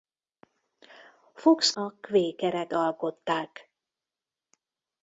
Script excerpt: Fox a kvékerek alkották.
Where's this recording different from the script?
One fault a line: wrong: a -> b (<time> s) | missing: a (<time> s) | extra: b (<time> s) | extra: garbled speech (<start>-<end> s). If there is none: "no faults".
no faults